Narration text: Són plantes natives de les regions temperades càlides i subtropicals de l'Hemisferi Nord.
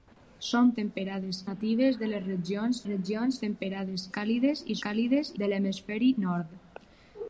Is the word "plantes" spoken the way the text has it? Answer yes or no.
no